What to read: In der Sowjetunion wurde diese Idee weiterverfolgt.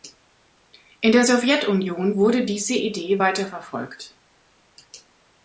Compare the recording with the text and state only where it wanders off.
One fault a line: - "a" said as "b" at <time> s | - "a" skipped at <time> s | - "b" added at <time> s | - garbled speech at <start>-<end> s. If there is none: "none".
none